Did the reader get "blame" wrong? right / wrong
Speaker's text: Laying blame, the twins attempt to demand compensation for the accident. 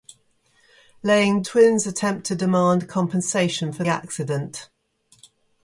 wrong